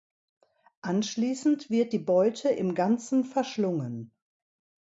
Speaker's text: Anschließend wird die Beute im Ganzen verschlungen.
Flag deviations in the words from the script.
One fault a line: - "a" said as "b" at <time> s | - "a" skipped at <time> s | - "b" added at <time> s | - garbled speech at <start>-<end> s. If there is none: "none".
none